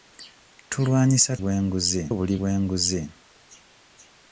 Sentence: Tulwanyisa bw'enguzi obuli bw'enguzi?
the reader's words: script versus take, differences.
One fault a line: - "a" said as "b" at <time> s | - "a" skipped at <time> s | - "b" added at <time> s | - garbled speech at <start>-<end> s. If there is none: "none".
none